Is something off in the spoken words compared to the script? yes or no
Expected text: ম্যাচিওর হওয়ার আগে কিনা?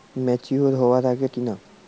no